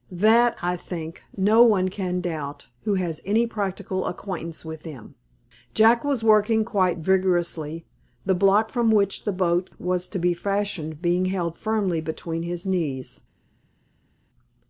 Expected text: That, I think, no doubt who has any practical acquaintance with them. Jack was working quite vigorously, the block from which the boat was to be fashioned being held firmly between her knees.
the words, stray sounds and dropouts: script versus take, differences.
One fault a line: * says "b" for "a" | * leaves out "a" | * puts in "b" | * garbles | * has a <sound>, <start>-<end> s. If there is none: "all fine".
* puts in "one can"
* says "his" for "her"